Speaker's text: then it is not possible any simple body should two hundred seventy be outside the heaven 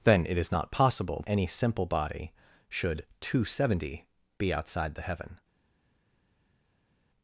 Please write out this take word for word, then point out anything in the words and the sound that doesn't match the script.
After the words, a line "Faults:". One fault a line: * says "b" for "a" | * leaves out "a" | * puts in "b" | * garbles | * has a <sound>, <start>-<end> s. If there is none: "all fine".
then it is not possible any simple body should two hundred seventy be outside the heaven
Faults:
all fine